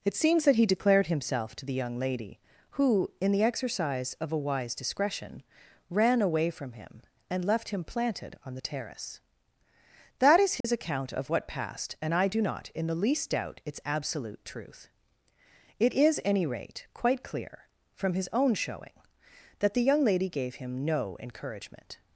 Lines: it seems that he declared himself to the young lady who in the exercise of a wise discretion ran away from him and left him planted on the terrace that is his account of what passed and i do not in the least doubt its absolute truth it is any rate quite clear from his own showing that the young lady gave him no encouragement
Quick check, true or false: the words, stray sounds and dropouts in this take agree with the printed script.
false